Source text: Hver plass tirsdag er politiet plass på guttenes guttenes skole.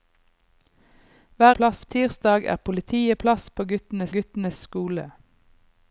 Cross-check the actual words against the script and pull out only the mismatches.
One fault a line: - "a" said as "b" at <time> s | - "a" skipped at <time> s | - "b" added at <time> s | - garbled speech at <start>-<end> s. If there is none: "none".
none